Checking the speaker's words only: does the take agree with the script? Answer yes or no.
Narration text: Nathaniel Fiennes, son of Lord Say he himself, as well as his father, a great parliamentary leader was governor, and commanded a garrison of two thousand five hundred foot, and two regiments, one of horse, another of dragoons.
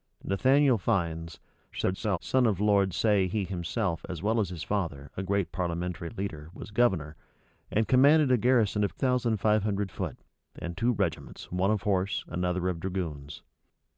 no